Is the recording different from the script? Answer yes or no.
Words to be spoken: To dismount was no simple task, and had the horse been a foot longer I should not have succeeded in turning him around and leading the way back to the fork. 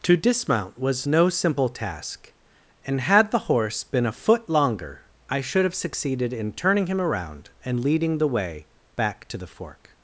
yes